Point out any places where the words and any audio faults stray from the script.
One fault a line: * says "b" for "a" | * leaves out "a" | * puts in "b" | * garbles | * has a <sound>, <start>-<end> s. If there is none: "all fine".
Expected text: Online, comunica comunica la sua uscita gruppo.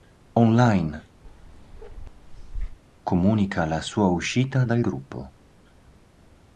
* has a bark, 1.2-2.8 s
* leaves out "comunica"
* puts in "dal"